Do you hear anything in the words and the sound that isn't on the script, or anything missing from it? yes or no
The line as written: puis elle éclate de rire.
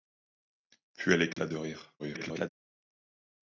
yes